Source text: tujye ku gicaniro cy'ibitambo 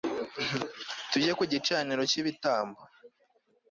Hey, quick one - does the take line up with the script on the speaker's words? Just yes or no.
yes